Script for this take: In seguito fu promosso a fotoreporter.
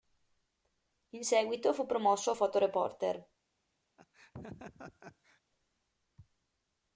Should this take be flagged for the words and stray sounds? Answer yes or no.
yes